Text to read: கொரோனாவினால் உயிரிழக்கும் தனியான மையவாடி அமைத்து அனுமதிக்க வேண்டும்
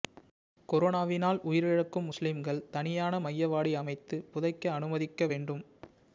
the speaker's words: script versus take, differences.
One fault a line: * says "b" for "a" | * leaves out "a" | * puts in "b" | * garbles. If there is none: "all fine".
* puts in "முஸ்லிம்கள்"
* puts in "புதைக்க"